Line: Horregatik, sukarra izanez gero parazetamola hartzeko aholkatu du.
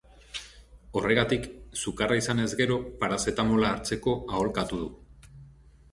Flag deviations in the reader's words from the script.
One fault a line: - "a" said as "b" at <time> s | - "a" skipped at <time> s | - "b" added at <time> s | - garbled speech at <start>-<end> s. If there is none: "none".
none